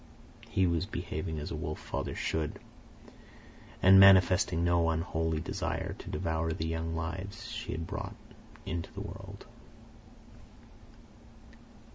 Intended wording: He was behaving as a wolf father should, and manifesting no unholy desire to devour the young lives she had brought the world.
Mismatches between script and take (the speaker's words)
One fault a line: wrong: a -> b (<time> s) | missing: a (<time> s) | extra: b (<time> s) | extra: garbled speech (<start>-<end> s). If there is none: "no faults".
extra: into (8.7 s)